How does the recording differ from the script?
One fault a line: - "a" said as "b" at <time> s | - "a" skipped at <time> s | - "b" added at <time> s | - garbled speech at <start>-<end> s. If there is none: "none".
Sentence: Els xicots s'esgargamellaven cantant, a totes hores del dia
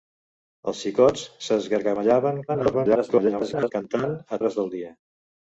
- garbled speech at 2.5-3.7 s
- "totes" skipped at 4.4 s